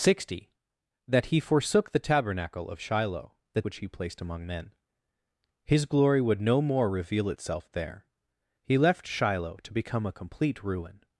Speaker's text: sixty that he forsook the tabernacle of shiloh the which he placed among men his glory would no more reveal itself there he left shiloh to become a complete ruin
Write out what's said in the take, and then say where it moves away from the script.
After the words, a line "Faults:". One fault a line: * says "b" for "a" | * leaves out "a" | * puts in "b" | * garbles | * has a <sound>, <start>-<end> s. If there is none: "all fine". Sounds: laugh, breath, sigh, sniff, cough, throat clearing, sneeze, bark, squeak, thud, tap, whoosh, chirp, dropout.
sixty that he forsook the tabernacle of shiloh the which he placed among men his glory would no more reveal itself there he left shiloh to become a complete ruin
Faults:
all fine